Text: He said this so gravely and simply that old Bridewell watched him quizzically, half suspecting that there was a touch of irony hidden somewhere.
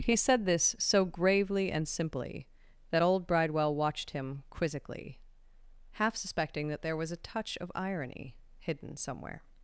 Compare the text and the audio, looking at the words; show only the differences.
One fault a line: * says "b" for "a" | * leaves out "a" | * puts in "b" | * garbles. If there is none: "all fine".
all fine